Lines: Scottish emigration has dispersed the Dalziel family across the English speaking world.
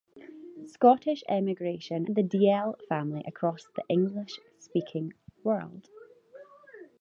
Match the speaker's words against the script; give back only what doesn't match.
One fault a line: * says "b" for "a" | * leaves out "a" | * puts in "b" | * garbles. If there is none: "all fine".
* leaves out "has dispersed"